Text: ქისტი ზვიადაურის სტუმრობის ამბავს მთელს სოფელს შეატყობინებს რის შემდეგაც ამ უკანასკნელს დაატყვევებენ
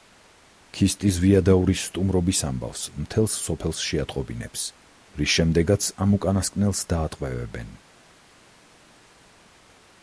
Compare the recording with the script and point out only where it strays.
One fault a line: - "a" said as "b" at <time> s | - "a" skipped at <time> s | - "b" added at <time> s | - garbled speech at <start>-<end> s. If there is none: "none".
none